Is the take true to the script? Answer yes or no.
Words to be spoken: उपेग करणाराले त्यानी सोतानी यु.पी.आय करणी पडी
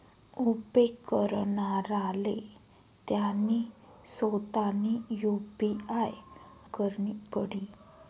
yes